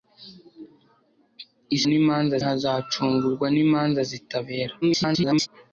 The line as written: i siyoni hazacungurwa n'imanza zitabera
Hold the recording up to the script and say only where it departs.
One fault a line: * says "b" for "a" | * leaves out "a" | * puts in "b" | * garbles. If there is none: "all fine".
* says "n'imanza" for "siyoni"
* garbles